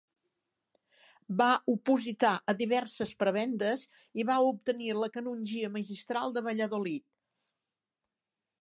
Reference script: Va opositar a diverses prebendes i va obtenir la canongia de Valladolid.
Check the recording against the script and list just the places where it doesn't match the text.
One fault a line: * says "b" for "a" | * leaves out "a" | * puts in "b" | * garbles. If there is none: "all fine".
* puts in "magistral"